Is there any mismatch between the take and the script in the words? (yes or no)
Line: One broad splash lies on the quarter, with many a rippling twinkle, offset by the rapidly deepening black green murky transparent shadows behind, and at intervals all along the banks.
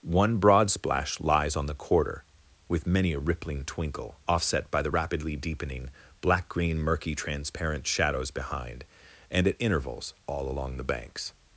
no